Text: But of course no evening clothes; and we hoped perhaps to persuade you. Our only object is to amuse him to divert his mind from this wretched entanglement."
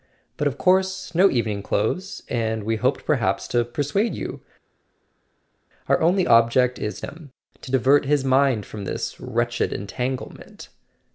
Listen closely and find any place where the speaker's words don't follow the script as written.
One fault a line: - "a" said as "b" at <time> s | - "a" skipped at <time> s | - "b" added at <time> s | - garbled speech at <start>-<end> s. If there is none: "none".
- "to amuse" skipped at 7.0 s